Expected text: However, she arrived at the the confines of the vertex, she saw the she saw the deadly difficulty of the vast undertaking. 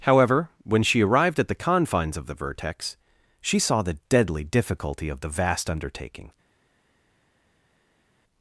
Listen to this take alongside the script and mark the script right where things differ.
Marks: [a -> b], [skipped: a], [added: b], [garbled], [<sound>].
However, [added: when] she arrived at the [skipped: the] confines of the vertex, she saw the [skipped: she saw the] deadly difficulty of the vast undertaking.